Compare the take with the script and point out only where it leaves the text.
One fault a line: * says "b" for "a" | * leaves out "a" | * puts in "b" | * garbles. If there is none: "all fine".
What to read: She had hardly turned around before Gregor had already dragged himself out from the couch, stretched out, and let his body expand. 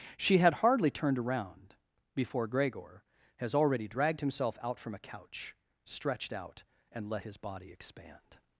* says "has" for "had"
* says "a" for "the"